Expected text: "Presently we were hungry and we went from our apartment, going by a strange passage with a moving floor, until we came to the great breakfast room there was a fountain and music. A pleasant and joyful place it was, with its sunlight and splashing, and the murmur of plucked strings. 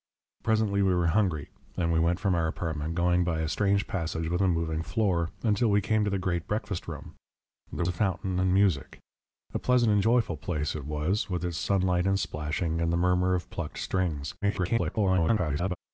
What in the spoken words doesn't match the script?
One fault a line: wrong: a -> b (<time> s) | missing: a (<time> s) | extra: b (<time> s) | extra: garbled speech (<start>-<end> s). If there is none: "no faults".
missing: was (7.8 s)
extra: garbled speech (14.4-15.8 s)